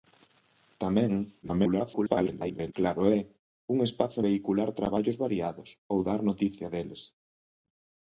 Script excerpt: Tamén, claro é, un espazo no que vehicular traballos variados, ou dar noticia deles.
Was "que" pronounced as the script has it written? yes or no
no